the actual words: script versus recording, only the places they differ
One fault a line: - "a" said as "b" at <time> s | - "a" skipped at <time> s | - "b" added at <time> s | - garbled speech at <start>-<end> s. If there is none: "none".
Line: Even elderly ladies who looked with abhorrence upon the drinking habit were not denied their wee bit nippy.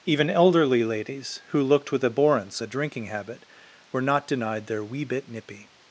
- "upon" skipped at 2.6 s